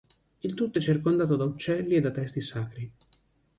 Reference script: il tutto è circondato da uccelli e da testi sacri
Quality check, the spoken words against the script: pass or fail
pass